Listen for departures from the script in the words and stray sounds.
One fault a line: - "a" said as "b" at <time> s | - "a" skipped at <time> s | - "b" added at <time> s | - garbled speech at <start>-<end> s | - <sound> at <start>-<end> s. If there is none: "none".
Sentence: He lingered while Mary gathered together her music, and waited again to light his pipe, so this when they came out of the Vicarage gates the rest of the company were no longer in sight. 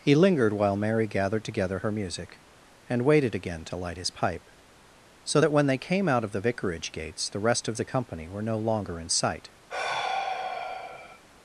- "this" said as "that" at 5.4 s
- sigh at 9.7-11.2 s